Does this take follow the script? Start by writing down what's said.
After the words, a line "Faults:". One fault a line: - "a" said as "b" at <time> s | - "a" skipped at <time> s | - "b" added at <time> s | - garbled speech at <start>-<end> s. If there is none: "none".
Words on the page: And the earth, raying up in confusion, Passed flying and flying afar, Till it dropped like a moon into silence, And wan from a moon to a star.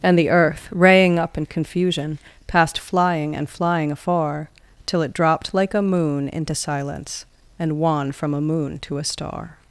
And the earth, raying up in confusion, Passed flying and flying afar, Till it dropped like a moon into silence, And wan from a moon to a star.
Faults:
none